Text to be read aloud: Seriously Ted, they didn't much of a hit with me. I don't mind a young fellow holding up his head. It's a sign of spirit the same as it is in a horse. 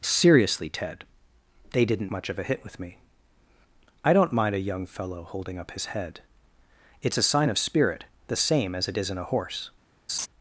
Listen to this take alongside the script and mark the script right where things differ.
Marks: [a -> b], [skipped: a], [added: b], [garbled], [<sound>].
Seriously Ted, they didn't much of a hit with me. I don't mind a young fellow holding up his head. It's a sign of spirit the same as it is in a horse. [laugh]